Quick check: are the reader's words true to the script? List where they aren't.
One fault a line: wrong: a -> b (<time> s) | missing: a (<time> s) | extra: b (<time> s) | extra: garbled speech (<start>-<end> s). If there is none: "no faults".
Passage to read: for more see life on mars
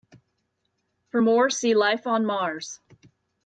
no faults